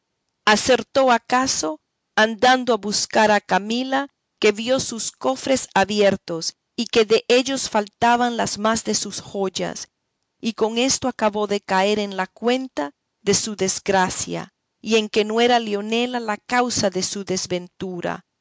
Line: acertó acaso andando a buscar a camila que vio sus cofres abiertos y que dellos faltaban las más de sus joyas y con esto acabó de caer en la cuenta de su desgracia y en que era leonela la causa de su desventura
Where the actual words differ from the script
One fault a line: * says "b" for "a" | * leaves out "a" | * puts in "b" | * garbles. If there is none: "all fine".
* puts in "no"